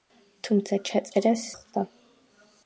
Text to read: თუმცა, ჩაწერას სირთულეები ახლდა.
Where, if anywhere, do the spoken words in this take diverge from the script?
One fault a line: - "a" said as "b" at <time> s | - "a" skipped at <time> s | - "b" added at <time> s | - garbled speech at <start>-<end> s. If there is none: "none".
- "სირთულეები" skipped at 1.4 s